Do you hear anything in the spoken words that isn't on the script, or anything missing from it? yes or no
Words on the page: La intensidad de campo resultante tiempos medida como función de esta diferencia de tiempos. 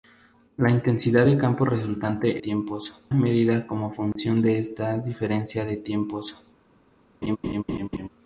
no